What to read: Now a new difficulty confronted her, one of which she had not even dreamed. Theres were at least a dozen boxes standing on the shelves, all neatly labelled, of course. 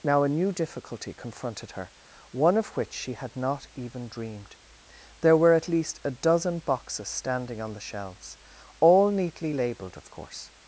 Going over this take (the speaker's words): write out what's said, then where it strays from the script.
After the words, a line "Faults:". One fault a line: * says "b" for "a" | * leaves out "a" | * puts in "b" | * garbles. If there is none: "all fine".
Now a new difficulty confronted her, one of which she had not even dreamed. There were at least a dozen boxes standing on the shelves, all neatly labelled, of course.
Faults:
* says "There" for "Theres"